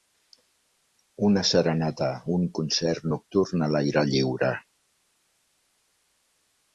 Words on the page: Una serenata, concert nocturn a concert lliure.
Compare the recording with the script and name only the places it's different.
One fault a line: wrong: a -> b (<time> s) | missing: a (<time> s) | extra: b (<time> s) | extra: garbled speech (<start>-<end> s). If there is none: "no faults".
extra: un (2.4 s)
wrong: concert -> l'aire (3.7 s)